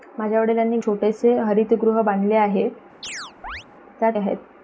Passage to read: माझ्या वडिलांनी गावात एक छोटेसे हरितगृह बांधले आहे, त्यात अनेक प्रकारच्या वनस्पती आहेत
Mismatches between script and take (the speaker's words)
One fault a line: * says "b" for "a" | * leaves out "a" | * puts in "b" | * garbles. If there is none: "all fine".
* leaves out "गावात एक"
* leaves out "अनेक प्रकारच्या वनस्पती"